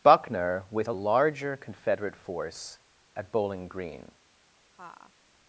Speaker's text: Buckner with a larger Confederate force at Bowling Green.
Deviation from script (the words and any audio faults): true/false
true